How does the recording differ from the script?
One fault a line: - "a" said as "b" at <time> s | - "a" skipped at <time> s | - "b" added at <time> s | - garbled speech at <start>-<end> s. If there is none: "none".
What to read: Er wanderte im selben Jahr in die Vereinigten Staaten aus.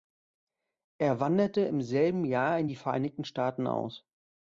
none